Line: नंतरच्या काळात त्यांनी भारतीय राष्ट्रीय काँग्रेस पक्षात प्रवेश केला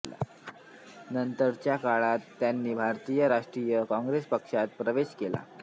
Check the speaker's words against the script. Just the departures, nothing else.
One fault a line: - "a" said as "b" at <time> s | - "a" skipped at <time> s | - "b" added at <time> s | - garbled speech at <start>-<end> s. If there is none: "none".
none